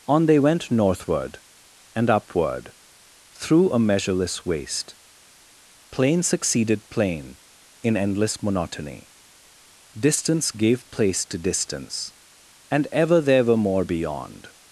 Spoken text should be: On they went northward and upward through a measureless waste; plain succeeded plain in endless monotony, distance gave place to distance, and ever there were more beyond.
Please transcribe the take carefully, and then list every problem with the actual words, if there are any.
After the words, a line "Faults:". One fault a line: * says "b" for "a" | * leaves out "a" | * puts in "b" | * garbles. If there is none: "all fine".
On they went northward and upward through a measureless waste; plain succeeded plain in endless monotony, distance gave place to distance, and ever there were more beyond.
Faults:
all fine